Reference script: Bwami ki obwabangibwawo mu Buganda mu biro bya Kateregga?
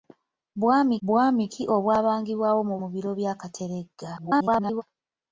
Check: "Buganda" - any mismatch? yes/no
yes